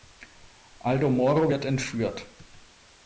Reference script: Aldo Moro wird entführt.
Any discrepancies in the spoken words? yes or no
no